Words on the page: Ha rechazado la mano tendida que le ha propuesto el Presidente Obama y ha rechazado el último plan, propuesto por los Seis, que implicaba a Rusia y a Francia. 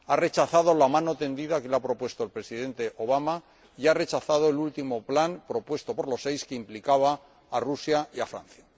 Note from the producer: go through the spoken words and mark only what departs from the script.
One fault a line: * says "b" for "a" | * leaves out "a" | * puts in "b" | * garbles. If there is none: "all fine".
all fine